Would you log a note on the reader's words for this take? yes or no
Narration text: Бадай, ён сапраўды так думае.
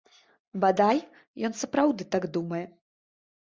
no